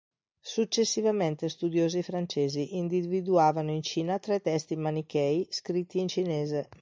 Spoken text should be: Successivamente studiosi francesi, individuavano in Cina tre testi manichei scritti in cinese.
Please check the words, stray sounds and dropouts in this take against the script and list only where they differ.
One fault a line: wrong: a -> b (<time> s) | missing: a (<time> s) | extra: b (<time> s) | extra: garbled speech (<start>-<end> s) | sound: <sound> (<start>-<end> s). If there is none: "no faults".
no faults